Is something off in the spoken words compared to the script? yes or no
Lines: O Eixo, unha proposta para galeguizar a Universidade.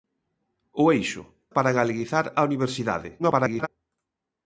yes